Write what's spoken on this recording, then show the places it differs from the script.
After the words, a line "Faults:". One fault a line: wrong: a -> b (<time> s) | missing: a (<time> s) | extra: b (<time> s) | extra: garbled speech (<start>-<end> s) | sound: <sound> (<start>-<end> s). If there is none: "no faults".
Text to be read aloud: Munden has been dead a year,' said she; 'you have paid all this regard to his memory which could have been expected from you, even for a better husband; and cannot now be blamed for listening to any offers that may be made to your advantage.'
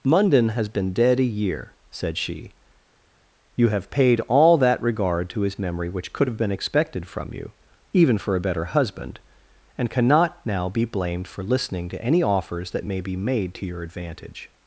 Munden has been dead a year,' said she; 'you have paid all that regard to his memory which could have been expected from you, even for a better husband; and cannot now be blamed for listening to any offers that may be made to your advantage.'
Faults:
wrong: this -> that (4.6 s)